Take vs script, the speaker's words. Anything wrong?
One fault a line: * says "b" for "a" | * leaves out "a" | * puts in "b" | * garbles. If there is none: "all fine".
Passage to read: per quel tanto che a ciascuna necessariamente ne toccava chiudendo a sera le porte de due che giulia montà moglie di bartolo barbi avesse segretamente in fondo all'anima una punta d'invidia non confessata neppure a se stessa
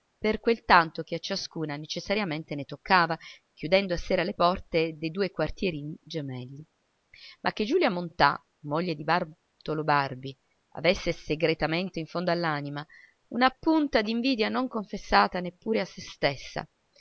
* puts in "quartierini gemelli ma"